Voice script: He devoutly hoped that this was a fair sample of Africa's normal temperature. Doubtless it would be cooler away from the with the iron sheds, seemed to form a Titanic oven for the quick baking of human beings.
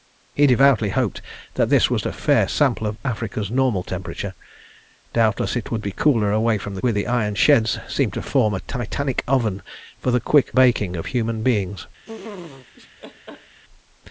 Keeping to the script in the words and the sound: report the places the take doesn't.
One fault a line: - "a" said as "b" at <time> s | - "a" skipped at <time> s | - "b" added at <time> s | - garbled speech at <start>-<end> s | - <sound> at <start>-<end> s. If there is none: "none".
- laugh at 12.0-13.6 s